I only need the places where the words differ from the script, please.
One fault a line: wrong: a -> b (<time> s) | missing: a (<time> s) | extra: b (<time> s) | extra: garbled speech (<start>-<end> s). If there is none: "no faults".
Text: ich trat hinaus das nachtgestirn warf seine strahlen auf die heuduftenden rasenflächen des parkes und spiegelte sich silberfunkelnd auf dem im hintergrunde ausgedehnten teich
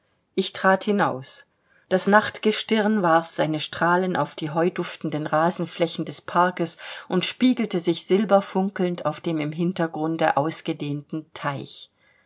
no faults